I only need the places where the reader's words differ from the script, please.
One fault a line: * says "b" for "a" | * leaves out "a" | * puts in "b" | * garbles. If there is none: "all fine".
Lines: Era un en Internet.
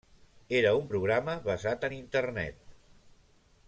* puts in "programa basat"